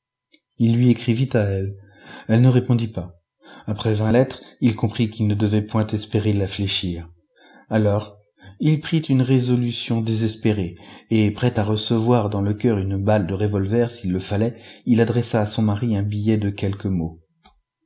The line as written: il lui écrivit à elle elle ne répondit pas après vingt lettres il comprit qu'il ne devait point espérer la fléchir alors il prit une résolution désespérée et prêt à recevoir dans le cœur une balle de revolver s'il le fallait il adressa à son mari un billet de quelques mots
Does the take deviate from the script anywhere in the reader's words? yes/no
no